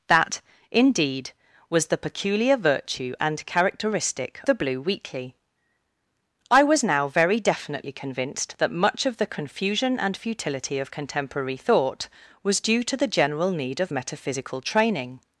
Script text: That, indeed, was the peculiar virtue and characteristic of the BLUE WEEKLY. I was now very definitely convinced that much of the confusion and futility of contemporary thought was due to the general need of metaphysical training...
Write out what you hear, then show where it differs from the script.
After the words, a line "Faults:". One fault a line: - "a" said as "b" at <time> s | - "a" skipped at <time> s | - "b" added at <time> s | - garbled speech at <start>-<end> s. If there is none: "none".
That, indeed, was the peculiar virtue and characteristic the BLUE WEEKLY. I was now very definitely convinced that much of the confusion and futility of contemporary thought was due to the general need of metaphysical training...
Faults:
- "of" skipped at 4.4 s